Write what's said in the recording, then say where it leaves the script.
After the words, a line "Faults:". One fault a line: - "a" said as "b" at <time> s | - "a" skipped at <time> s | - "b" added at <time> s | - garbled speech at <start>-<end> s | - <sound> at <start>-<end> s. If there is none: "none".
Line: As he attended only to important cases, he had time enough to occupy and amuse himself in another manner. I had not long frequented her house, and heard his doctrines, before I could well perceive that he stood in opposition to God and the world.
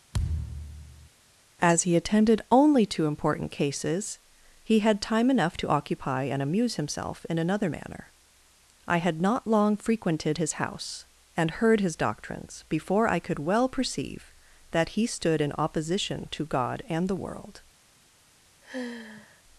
As he attended only to important cases, he had time enough to occupy and amuse himself in another manner. I had not long frequented his house, and heard his doctrines, before I could well perceive that he stood in opposition to God and the world.
Faults:
- thud at 0.1-1.1 s
- "her" said as "his" at 10.4 s
- sigh at 18.6-19.4 s